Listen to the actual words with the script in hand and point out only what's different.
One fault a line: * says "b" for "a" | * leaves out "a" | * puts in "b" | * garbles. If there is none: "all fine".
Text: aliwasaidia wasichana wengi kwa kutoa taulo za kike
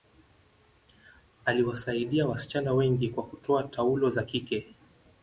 all fine